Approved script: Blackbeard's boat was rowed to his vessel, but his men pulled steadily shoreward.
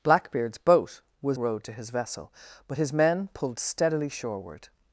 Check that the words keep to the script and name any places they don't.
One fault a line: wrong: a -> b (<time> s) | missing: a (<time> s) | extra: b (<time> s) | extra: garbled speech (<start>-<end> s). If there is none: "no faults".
no faults